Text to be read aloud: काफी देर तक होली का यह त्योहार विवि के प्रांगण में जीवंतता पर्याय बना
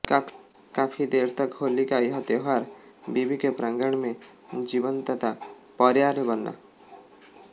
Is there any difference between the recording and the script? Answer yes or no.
no